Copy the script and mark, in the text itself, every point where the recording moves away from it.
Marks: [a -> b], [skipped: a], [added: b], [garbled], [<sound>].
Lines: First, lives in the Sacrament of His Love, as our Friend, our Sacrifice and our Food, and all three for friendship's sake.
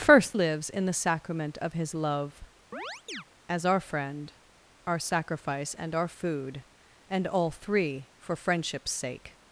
First, lives in the Sacrament of His Love, [chirp] as our Friend, our Sacrifice and our Food, and all three for friendship's sake.